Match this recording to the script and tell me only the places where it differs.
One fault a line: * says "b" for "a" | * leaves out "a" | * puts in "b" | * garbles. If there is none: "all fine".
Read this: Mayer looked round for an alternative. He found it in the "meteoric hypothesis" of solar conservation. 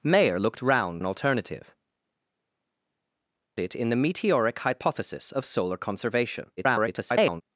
* leaves out "for"
* leaves out "He found"
* garbles